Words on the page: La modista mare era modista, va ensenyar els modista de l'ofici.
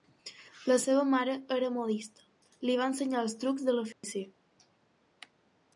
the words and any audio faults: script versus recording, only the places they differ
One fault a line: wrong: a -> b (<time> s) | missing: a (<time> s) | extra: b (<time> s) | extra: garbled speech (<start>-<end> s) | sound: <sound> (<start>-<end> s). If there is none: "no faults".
wrong: modista -> seva (0.8 s)
extra: li (2.7 s)
wrong: modista -> trucs (3.5 s)
sound: dropout (3.9-4.0 s)